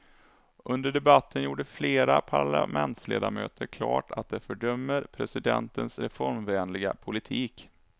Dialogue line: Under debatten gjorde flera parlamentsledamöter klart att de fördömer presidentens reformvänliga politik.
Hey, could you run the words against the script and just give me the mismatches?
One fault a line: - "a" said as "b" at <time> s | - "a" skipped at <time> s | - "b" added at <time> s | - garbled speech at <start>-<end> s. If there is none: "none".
none